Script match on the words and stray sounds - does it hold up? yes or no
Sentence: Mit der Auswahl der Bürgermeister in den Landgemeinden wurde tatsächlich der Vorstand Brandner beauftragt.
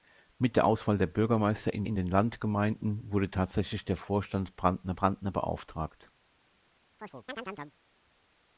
no